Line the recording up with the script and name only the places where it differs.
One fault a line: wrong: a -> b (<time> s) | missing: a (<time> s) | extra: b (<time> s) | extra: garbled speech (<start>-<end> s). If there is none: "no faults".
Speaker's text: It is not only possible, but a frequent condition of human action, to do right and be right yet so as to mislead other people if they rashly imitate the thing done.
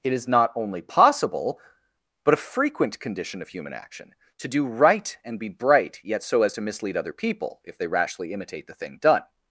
wrong: right -> bright (5.5 s)